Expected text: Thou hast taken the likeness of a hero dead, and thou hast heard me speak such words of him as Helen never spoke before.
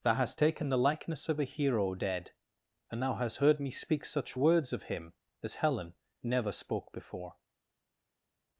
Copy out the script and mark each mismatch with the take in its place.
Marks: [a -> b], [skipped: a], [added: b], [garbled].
Thou hast taken the likeness of a hero dead, and thou hast heard me speak such words of him as Helen never spoke before.